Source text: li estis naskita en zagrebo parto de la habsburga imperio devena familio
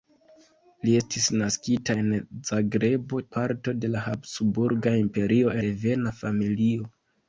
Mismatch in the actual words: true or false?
false